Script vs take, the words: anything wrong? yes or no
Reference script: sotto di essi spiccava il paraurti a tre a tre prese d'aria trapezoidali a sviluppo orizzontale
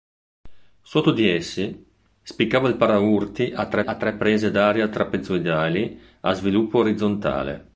no